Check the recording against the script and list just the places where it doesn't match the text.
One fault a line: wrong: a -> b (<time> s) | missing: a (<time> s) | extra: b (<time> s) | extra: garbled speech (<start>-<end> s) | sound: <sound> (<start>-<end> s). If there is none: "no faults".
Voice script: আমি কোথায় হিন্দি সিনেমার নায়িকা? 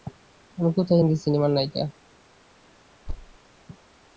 sound: thud (3.1-3.4 s)